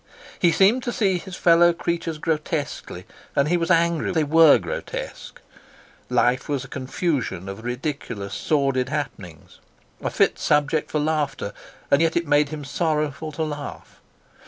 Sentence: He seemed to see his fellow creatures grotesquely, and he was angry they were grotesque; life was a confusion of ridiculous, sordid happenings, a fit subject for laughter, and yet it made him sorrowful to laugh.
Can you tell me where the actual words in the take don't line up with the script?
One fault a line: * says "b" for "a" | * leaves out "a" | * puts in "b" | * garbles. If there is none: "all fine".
all fine